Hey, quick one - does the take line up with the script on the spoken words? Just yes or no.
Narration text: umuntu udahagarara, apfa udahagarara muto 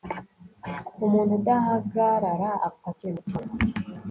no